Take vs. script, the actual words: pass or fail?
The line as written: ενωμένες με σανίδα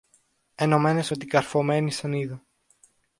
fail